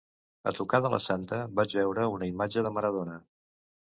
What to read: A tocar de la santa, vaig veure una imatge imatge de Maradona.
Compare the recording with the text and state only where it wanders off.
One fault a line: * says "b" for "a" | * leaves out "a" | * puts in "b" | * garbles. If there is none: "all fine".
* leaves out "imatge"